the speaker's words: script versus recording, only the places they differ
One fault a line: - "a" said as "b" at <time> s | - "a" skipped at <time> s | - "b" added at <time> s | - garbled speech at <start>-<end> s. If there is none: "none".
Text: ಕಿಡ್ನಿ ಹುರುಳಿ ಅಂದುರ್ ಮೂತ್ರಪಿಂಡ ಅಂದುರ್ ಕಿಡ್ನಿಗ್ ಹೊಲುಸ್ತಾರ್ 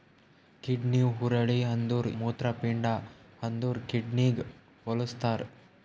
none